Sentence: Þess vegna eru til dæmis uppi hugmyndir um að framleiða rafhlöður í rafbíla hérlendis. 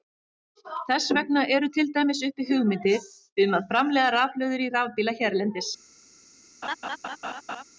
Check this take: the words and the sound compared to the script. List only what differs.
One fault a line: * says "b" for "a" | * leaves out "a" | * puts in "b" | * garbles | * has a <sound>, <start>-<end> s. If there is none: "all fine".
* has a laugh, 6.6-7.6 s